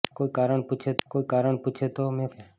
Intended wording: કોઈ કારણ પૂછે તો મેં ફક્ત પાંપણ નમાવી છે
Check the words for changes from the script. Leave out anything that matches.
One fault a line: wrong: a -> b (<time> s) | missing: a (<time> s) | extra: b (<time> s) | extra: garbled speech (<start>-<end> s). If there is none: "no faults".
wrong: તો મેં ફક્ત પાંપણ નમાવી -> કોઈ કારણ પૂછે તો મેં (1.1 s)